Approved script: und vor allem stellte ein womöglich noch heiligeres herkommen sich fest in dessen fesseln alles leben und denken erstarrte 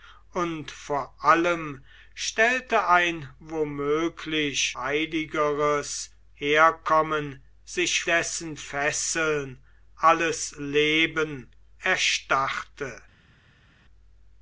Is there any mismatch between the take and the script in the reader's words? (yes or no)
yes